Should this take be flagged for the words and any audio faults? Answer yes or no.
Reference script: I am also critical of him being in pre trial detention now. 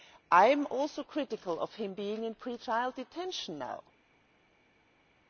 no